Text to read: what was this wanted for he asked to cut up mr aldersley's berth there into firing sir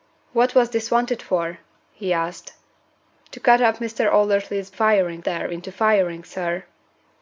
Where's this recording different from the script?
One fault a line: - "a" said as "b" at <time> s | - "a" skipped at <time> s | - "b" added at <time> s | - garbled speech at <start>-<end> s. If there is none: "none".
- "berth" said as "firing" at 4.7 s